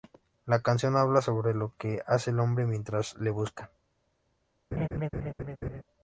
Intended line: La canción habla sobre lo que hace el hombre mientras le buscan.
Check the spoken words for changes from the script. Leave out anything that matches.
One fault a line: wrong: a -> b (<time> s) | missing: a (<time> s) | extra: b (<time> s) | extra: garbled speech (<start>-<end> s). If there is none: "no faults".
no faults